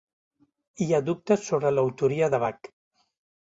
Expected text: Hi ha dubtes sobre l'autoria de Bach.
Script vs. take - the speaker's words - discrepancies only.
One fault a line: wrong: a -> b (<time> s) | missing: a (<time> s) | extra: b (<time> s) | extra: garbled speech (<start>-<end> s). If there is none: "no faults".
no faults